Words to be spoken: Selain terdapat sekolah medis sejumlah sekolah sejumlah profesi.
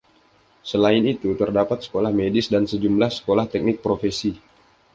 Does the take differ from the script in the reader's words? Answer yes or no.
yes